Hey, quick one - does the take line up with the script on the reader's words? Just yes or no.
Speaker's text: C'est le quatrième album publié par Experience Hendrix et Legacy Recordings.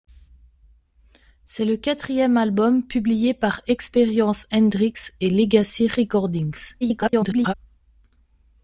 no